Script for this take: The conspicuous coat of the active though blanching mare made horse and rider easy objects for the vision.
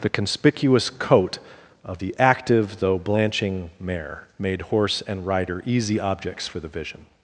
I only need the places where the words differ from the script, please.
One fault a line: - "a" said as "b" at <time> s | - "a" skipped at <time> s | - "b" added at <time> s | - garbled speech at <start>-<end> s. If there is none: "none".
none